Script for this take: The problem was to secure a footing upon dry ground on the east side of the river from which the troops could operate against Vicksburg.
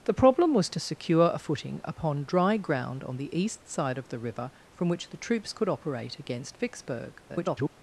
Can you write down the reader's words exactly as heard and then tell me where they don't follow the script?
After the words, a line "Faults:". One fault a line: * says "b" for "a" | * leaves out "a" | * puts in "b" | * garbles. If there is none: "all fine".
The problem was to secure a footing upon dry ground on the east side of the river from which the troops could operate against Vicksburg. [garbled]
Faults:
* garbles